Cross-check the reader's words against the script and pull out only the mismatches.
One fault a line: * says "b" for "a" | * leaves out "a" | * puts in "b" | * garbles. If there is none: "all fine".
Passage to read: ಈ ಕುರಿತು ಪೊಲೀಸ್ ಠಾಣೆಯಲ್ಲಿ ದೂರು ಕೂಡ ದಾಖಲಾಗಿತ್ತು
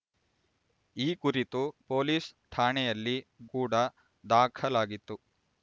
* leaves out "ದೂರು"